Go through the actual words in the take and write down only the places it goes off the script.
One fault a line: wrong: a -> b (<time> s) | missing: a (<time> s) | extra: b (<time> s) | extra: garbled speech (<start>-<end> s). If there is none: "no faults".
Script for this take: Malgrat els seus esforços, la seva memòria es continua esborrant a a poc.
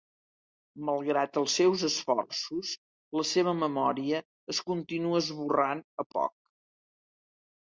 no faults